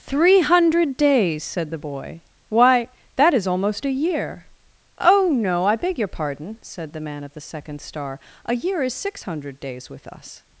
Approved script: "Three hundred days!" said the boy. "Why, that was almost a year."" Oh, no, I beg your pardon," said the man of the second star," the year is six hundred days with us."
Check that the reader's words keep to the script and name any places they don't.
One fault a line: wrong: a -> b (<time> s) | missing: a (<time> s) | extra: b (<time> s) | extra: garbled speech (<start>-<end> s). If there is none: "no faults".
wrong: was -> is (3.3 s)
wrong: the -> a (8.4 s)